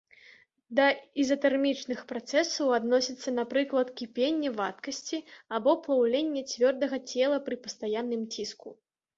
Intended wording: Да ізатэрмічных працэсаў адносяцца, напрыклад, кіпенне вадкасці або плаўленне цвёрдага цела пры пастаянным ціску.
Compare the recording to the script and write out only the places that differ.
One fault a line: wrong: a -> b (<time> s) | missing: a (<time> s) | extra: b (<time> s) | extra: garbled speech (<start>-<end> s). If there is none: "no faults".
no faults